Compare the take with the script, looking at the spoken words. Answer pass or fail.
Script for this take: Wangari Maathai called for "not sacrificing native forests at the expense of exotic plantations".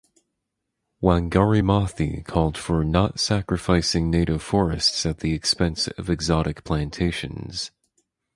pass